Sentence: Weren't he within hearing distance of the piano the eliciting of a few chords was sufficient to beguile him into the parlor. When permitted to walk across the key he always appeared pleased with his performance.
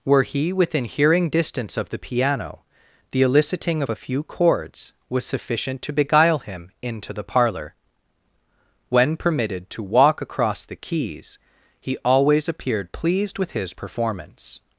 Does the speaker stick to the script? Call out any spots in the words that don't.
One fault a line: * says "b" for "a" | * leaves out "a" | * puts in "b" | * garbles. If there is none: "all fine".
* says "Were" for "Weren't"
* says "keys" for "key"